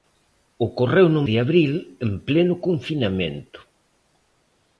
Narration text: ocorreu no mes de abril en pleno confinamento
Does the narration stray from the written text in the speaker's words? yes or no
yes